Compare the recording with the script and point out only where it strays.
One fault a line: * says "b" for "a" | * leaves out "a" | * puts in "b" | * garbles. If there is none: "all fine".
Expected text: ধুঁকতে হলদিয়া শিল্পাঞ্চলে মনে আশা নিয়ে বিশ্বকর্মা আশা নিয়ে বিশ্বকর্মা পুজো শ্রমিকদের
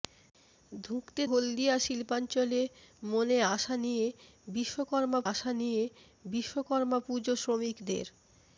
all fine